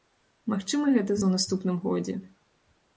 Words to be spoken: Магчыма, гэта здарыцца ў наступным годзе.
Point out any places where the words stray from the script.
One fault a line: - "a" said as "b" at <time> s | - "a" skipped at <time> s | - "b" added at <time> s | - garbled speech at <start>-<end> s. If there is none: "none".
- "здарыцца" skipped at 1.2 s